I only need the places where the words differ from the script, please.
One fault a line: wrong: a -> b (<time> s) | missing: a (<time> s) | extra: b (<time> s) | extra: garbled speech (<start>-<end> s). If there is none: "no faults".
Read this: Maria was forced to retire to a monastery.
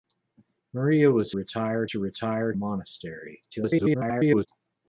wrong: forced -> retire (1.3 s)
missing: to (2.5 s)
extra: garbled speech (3.5-4.5 s)